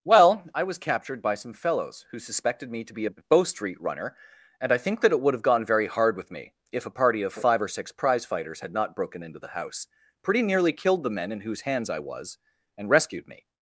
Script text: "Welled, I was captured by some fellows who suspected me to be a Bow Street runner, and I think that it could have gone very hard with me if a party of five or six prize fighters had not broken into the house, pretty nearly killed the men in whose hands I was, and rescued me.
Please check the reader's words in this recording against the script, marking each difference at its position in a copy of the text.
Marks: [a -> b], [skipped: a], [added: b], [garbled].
["Welled, -> Well] I was captured by some fellows who suspected me to be a Bow Street runner, and I think that it [could -> would] have gone very hard with me if a party of five or six prize fighters had not broken into the house, pretty nearly killed the men in whose hands I was, and rescued me.